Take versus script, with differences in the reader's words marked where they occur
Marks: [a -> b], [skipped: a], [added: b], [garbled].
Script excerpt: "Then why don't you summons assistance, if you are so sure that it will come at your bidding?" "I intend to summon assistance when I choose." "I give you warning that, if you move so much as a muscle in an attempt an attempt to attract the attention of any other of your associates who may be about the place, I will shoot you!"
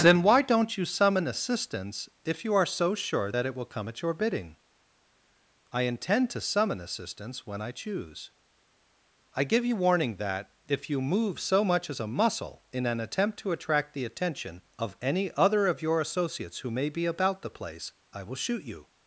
"Then why don't you [summons -> summon] assistance, if you are so sure that it will come at your bidding?" "I intend to summon assistance when I choose." "I give you warning that, if you move so much as a muscle in an attempt [skipped: an attempt] to attract the attention of any other of your associates who may be about the place, I will shoot you!"